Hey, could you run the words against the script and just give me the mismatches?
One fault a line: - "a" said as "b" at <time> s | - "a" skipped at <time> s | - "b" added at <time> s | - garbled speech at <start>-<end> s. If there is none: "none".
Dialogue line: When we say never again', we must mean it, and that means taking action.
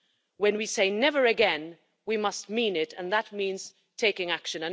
none